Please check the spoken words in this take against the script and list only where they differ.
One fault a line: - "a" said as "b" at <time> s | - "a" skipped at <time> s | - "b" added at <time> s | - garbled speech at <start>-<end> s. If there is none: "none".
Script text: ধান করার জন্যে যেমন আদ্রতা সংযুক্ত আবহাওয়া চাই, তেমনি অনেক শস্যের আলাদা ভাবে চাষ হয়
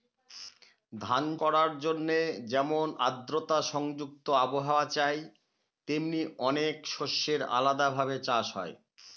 none